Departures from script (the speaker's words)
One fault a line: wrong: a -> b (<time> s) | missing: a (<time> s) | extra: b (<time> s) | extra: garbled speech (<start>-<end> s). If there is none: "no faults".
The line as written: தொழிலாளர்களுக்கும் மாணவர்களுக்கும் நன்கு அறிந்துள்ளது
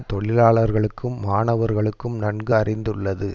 no faults